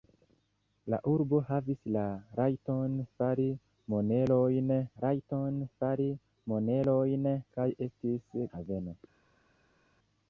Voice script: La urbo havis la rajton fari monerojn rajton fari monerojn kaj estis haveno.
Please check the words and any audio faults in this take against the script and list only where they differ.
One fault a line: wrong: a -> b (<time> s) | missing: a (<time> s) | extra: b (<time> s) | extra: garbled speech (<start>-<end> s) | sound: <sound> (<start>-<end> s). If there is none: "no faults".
no faults